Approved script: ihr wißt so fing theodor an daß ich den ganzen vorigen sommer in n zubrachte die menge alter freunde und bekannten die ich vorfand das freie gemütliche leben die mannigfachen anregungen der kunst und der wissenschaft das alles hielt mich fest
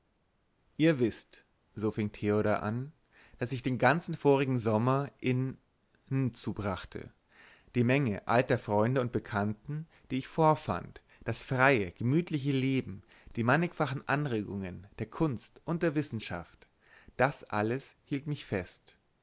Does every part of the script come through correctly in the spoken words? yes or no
yes